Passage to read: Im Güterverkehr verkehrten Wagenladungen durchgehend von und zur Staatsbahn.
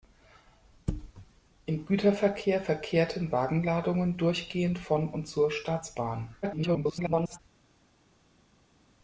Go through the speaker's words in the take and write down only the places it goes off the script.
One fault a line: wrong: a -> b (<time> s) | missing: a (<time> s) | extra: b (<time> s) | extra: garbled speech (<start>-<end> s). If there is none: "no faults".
extra: garbled speech (6.4-7.4 s)